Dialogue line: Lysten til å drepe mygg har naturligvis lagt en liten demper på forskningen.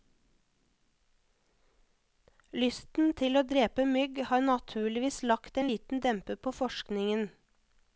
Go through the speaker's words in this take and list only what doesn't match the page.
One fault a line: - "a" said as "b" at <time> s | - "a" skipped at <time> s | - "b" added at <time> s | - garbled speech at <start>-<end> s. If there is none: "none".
none